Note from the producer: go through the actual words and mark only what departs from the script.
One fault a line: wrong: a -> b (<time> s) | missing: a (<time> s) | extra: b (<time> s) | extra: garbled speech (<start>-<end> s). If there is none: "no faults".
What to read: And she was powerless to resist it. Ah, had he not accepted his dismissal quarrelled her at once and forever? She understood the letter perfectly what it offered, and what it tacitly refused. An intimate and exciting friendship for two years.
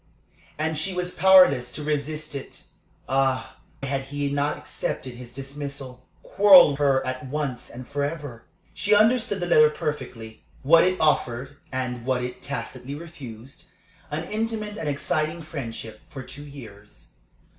no faults